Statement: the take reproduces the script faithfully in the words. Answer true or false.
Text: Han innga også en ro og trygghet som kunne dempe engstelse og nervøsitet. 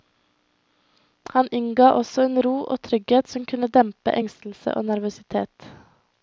true